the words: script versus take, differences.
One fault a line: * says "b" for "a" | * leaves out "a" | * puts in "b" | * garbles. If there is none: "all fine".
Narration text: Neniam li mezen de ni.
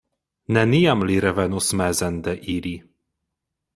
* puts in "revenos"
* says "ili" for "ni"